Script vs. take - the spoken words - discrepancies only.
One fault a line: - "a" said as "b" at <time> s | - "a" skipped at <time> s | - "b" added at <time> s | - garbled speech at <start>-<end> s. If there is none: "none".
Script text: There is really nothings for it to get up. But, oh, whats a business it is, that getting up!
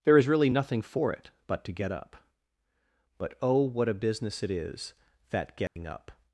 - "nothings" said as "nothing" at 0.5 s
- "but" added at 1.5 s
- "whats" said as "what" at 3.6 s